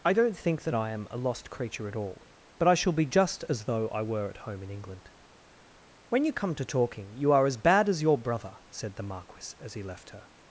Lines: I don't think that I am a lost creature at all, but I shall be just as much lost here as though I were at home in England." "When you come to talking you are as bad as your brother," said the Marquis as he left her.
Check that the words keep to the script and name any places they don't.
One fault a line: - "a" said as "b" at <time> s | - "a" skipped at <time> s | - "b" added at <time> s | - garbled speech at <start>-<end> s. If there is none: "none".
- "much lost here as" skipped at 3.6 s